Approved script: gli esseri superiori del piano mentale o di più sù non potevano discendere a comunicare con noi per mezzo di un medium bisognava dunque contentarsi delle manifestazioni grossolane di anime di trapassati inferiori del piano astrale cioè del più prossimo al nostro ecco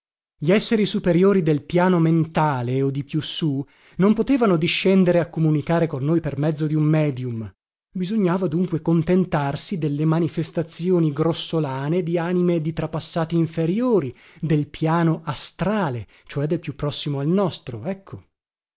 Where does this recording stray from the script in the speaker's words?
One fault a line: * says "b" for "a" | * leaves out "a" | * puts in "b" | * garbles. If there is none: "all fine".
all fine